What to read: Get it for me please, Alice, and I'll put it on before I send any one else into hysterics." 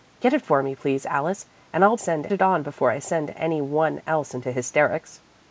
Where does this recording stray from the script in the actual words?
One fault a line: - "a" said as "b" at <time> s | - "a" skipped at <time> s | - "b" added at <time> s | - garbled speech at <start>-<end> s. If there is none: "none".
- "put" said as "send" at 1.9 s